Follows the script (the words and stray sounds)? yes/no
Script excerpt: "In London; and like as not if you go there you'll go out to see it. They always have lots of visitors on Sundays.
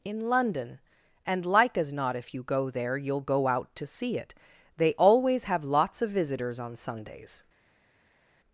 yes